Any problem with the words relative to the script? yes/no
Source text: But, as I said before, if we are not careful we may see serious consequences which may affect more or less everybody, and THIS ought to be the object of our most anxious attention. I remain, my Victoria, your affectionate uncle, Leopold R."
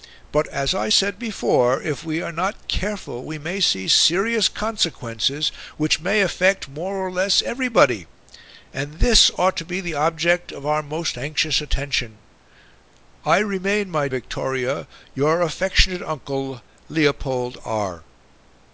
no